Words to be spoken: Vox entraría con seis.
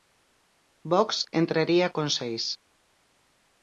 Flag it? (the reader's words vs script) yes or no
no